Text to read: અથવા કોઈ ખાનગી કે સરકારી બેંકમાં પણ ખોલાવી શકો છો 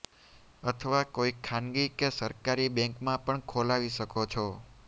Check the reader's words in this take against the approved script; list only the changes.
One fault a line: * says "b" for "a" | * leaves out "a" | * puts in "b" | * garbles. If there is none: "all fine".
all fine